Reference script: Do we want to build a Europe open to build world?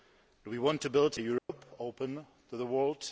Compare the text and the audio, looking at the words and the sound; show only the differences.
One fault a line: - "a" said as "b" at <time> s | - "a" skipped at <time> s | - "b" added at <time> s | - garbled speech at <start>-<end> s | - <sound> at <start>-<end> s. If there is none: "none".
- dropout at 1.4-1.5 s
- "build" said as "the" at 2.6 s